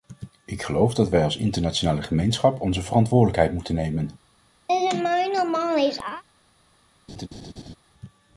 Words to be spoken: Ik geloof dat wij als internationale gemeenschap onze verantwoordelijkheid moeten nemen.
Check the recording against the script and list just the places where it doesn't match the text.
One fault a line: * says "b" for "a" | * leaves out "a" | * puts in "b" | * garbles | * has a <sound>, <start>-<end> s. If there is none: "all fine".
* has a laugh, 4.7-6.2 s
* has a laugh, 7.1-7.8 s